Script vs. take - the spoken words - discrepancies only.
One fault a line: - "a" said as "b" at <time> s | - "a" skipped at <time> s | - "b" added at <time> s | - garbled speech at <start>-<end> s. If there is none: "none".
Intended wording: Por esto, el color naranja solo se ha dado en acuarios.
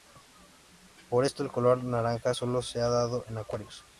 none